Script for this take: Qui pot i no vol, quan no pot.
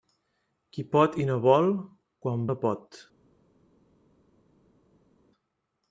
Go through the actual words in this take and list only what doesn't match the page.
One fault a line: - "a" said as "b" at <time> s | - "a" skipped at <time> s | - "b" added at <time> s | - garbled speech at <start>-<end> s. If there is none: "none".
none